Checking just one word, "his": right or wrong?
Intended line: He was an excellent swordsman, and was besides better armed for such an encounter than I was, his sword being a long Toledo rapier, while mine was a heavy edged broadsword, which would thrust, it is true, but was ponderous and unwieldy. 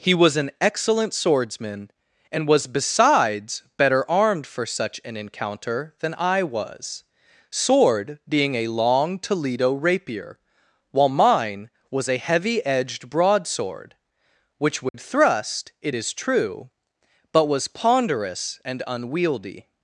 wrong